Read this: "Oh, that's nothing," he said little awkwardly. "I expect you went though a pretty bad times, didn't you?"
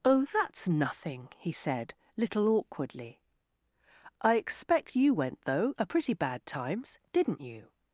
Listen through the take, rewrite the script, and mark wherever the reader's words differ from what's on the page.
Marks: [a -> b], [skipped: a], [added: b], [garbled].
"Oh, that's nothing," he said little awkwardly. "I expect you went though a pretty bad times, didn't you?"